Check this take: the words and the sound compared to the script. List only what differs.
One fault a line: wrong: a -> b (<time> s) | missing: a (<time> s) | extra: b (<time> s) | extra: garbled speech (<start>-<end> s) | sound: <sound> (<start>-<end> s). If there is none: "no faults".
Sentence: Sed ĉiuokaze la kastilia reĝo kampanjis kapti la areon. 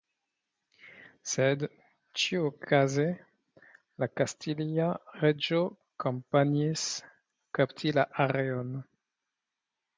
no faults